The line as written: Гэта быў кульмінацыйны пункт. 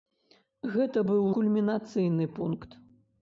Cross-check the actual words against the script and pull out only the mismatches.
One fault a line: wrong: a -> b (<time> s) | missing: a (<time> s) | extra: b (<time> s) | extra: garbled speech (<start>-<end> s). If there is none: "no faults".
no faults